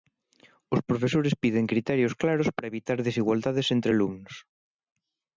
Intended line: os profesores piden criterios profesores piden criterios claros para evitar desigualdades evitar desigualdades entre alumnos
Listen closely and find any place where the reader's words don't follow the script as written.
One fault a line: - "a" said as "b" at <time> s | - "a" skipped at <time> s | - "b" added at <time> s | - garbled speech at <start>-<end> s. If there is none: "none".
- "profesores piden criterios" skipped at 2.1 s
- "evitar desigualdades" skipped at 3.7 s